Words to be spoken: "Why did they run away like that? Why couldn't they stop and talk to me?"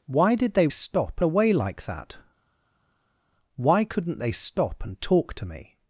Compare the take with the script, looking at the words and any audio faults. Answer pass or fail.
fail